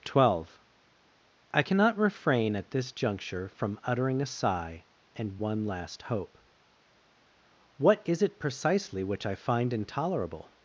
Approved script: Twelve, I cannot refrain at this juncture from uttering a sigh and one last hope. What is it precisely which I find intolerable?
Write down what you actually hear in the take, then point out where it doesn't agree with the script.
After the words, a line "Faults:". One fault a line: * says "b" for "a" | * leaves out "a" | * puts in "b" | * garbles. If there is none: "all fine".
Twelve, I cannot refrain at this juncture from uttering a sigh and one last hope. What is it precisely which I find intolerable?
Faults:
all fine